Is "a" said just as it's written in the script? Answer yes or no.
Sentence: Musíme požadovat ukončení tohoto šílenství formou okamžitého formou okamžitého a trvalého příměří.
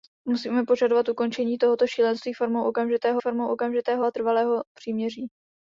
yes